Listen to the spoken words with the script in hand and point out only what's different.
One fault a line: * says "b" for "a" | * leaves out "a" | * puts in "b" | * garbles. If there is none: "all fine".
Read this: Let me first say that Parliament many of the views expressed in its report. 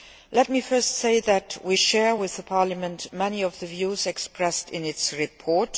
* puts in "we share with"